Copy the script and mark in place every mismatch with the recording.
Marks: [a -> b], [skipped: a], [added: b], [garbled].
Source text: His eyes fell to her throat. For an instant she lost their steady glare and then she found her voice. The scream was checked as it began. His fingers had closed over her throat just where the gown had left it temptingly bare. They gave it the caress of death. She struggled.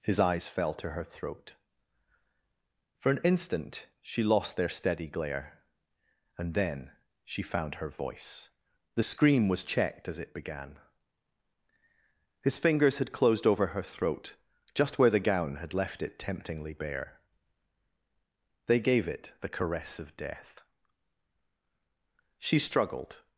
His eyes fell to her throat. For an instant she lost their steady glare and then she found her voice. The scream was checked as it began. His fingers had closed over her throat just where the gown had left it temptingly bare. They gave it the caress of death. She struggled.